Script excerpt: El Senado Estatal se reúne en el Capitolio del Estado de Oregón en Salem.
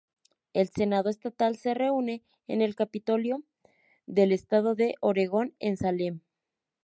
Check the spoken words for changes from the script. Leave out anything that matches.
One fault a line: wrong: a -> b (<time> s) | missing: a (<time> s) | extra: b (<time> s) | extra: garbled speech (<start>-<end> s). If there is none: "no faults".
no faults